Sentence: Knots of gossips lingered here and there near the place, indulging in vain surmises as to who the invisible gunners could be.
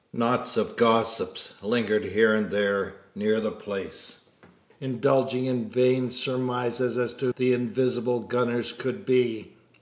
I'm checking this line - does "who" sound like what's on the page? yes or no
no